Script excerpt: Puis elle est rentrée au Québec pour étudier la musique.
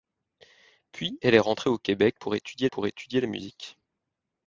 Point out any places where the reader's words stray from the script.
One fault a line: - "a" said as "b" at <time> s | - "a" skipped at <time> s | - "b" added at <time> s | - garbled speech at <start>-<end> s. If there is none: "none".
- "pour étudier" added at 2.7 s